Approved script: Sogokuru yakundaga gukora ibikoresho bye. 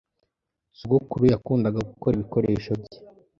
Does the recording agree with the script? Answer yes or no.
yes